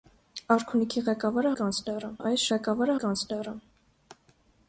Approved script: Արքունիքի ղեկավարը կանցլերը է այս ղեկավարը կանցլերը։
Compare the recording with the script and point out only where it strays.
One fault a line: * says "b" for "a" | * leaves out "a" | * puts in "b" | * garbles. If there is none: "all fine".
all fine